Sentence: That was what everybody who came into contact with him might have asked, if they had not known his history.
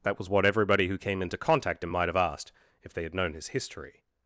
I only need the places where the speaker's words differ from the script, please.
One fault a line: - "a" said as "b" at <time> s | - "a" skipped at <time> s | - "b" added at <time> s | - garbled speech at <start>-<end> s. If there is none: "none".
- "with" skipped at 1.9 s
- "not" skipped at 3.1 s